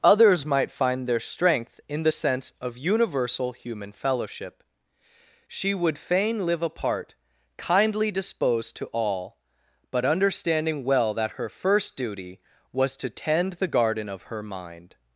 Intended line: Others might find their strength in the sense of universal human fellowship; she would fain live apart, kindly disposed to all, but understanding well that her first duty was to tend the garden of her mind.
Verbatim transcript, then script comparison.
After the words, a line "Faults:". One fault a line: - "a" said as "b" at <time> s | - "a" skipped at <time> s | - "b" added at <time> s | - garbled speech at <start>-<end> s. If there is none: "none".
Others might find their strength in the sense of universal human fellowship; she would fain live apart, kindly disposed to all, but understanding well that her first duty was to tend the garden of her mind.
Faults:
none